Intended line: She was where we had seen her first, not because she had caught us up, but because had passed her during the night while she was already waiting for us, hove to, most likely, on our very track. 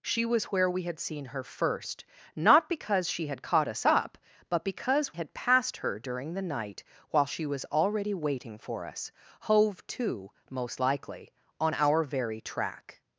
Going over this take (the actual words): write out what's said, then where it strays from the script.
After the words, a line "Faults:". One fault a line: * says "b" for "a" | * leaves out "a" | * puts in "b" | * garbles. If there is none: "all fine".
She was where we had seen her first, not because she had caught us up, but because had passed her during the night while she was already waiting for us, hove to, most likely, on our very track.
Faults:
all fine